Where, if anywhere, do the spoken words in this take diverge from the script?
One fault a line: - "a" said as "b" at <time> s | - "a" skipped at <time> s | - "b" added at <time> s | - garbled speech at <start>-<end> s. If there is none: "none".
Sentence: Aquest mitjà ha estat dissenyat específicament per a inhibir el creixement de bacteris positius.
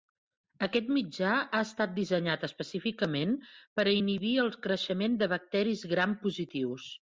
- "gram" added at 6.0 s